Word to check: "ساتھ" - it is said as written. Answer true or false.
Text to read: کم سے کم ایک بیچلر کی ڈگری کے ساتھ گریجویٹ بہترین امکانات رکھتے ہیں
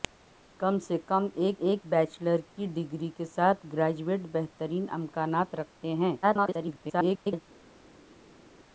true